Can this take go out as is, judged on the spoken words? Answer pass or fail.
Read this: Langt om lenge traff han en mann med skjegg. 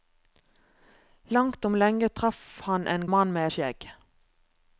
pass